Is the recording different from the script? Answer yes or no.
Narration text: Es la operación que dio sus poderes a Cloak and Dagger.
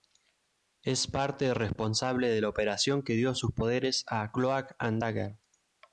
yes